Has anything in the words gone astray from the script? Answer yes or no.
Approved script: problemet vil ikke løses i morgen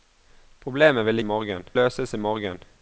yes